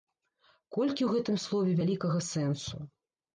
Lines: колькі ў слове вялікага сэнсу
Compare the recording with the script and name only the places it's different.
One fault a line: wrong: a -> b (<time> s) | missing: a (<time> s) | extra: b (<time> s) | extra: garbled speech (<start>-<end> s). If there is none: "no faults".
extra: гэтым (1.1 s)